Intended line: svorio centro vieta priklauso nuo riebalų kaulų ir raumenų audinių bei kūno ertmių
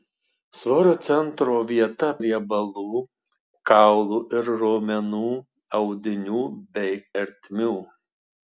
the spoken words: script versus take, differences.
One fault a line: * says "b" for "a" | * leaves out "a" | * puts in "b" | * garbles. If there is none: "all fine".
* leaves out "priklauso nuo"
* leaves out "kūno"